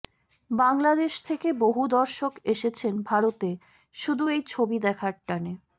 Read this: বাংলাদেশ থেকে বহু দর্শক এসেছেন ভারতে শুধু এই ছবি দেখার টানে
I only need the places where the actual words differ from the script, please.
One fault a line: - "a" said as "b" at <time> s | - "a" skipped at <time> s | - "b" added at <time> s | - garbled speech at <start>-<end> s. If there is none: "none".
none